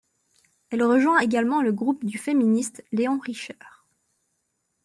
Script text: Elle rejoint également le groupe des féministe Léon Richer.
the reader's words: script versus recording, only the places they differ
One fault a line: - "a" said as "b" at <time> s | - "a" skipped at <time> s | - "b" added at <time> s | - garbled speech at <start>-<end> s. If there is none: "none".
- "des" said as "du" at 2.0 s